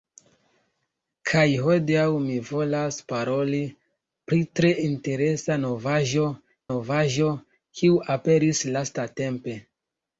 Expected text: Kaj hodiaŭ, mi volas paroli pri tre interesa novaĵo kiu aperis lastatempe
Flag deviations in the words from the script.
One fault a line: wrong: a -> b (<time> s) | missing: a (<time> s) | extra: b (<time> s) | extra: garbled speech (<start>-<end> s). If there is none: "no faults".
extra: novaĵo (6.7 s)